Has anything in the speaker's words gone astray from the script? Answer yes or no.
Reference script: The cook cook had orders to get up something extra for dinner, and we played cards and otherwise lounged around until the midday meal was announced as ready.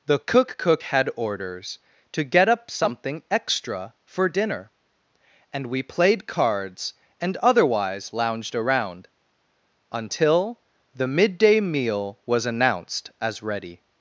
no